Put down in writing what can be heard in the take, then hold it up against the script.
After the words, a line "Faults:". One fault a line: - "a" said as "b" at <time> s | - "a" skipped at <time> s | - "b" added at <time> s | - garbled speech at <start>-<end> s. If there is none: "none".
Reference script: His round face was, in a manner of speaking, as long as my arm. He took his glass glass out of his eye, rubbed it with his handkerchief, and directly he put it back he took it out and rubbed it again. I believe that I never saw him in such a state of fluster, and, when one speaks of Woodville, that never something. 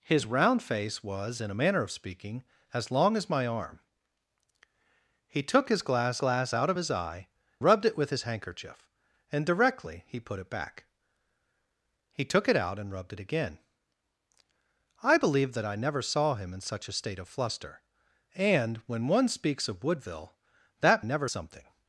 His round face was, in a manner of speaking, as long as my arm. He took his glass glass out of his eye, rubbed it with his handkerchief, and directly he put it back he took it out and rubbed it again. I believe that I never saw him in such a state of fluster, and, when one speaks of Woodville, that never something.
Faults:
none